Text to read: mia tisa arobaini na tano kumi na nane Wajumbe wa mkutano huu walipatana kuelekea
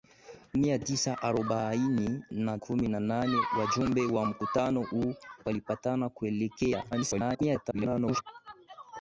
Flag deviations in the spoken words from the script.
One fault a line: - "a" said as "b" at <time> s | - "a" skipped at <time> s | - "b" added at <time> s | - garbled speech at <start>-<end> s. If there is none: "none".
- "tano" skipped at 2.6 s
- garbled speech at 6.9-8.2 s